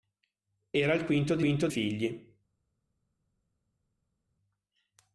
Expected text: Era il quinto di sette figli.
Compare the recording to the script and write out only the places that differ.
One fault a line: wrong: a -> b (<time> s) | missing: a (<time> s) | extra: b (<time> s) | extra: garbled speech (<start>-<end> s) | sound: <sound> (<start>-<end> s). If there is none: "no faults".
wrong: sette -> quinto (1.4 s)